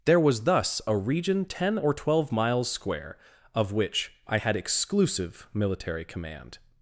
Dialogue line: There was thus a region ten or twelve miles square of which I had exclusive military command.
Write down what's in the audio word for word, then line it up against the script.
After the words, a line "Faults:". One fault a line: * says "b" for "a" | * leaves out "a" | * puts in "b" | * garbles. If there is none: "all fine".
There was thus a region ten or twelve miles square of which I had exclusive military command.
Faults:
all fine